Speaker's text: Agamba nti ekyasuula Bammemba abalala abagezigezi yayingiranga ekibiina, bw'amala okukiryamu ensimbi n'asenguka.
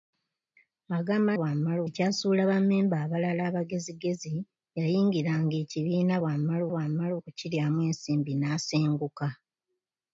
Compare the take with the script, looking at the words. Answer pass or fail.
fail